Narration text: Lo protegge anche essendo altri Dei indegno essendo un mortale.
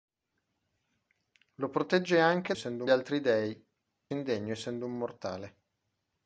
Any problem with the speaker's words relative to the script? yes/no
no